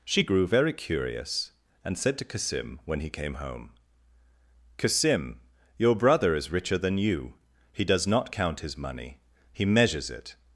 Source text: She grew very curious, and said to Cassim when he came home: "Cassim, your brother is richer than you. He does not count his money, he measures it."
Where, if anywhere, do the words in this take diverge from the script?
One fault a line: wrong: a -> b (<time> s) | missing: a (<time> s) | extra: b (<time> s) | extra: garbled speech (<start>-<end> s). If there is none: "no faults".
no faults